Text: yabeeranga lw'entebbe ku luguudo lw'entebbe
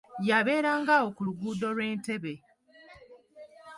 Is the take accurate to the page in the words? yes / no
no